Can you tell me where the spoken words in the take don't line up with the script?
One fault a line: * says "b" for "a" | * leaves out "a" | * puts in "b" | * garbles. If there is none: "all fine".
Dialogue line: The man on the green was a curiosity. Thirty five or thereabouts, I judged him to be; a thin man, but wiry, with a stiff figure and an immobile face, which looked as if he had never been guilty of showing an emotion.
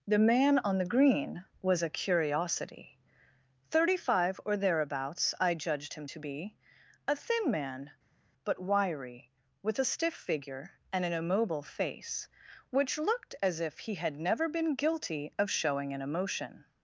all fine